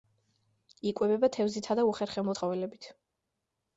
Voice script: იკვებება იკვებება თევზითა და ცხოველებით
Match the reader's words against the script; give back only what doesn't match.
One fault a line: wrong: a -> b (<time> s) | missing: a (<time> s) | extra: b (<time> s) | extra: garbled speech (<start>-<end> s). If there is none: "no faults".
missing: იკვებება (1.3 s)
extra: უხერხემლო (1.9 s)